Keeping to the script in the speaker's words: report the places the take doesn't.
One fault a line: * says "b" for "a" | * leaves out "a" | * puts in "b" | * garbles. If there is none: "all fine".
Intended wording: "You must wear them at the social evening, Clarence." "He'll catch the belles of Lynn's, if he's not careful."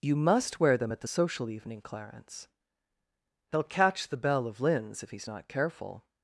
* says "belle" for "belles"